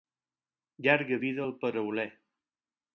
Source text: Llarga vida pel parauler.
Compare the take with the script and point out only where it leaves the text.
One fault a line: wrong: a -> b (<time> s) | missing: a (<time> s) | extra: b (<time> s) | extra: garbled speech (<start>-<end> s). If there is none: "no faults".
wrong: pel -> al (1.4 s)